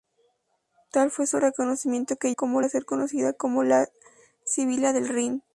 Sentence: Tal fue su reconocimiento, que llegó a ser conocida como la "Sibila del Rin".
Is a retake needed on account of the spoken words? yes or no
yes